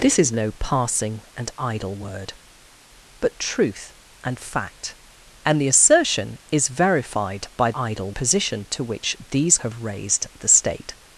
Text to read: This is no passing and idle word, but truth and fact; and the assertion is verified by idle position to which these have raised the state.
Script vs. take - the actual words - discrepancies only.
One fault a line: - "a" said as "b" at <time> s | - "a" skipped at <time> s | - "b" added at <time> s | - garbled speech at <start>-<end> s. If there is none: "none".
none